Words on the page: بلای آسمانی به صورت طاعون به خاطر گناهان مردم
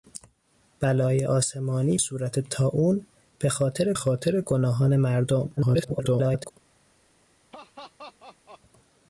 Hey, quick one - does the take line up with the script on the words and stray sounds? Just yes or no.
no